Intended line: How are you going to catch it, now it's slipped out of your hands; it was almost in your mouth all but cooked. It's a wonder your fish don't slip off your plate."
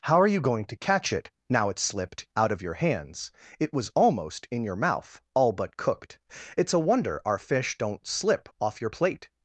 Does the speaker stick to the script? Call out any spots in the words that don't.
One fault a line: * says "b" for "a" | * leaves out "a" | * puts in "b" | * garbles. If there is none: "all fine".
* says "our" for "your"